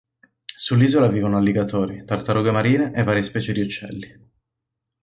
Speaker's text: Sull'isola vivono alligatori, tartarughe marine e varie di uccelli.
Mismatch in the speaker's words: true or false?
true